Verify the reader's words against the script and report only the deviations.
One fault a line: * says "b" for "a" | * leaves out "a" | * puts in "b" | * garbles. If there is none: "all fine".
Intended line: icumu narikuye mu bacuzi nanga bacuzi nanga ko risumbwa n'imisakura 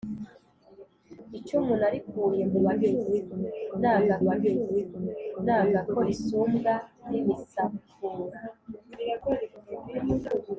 all fine